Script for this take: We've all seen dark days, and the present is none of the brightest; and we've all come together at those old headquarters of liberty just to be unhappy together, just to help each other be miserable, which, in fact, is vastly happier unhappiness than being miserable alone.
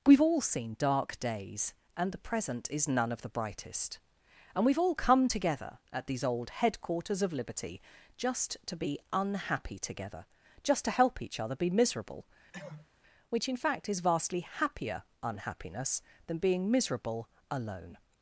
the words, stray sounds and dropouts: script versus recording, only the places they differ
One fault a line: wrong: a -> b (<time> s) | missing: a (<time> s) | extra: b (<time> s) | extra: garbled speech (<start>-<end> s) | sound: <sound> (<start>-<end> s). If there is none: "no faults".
wrong: those -> these (6.1 s)
sound: cough (12.5-12.9 s)